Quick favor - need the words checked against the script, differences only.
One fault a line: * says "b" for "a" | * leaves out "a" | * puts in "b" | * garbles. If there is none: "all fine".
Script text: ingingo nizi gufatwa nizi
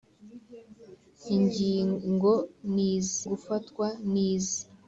all fine